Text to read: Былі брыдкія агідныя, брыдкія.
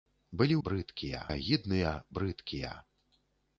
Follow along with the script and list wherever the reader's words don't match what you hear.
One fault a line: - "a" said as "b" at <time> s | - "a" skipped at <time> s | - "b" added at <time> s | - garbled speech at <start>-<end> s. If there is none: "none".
none